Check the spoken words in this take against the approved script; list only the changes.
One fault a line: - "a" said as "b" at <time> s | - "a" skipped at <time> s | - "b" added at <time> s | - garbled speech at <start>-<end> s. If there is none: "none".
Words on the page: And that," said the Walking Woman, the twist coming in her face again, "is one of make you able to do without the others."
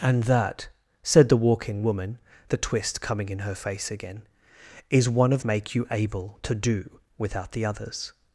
none